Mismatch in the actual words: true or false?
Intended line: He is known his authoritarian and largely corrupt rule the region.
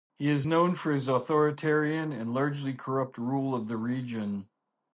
true